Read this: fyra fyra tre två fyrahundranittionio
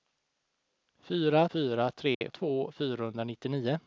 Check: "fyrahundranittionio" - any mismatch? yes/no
no